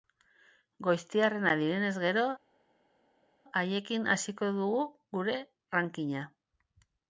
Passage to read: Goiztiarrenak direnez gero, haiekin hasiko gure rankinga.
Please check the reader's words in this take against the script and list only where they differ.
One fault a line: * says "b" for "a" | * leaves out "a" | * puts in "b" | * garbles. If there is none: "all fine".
* puts in "dugu"